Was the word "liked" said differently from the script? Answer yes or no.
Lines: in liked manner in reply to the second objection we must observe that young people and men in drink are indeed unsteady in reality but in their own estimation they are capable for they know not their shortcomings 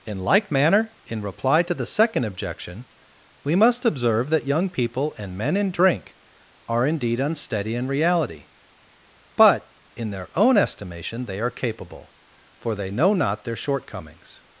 yes